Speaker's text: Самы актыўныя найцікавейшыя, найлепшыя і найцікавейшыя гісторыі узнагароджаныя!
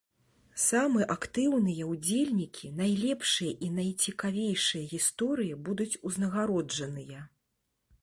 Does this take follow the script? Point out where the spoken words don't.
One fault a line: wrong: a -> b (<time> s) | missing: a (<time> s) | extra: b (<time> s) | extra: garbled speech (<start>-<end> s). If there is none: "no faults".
wrong: найцікавейшыя -> ўдзельнікі (1.9 s)
extra: будуць (5.7 s)